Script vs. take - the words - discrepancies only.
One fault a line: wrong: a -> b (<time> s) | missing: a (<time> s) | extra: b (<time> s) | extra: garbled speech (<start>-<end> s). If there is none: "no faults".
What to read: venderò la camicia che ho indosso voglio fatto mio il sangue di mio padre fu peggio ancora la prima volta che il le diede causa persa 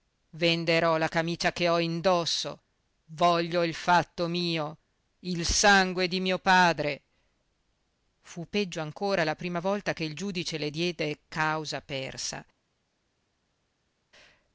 extra: il (3.6 s)
extra: giudice (10.2 s)